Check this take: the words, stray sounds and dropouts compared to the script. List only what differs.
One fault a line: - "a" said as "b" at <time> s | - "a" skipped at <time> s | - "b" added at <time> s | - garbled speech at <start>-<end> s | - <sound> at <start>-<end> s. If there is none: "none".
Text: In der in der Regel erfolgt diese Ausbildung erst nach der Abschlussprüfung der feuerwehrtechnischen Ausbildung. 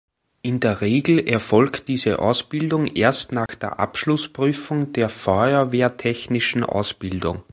- "in der" skipped at 0.8 s
- dropout at 3.5-3.5 s